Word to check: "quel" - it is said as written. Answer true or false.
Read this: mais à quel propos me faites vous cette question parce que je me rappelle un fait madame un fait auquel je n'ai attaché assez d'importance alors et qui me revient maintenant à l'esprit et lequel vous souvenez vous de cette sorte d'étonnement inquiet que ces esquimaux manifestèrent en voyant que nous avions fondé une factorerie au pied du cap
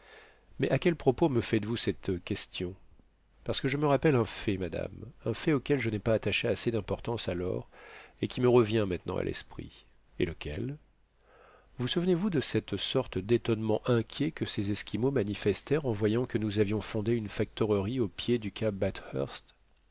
true